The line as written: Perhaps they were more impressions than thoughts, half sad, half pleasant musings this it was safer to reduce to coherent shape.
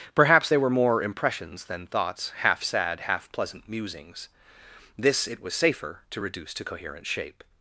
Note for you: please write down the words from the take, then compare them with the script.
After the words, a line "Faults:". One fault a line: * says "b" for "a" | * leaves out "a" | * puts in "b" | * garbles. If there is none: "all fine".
Perhaps they were more impressions than thoughts, half sad, half pleasant musings this it was safer to reduce to coherent shape.
Faults:
all fine